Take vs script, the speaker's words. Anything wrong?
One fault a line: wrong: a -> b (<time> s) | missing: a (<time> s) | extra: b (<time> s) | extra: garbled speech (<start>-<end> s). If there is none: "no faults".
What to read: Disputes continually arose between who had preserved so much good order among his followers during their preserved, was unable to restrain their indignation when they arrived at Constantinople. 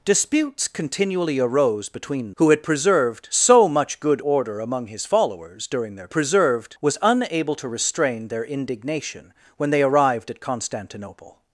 no faults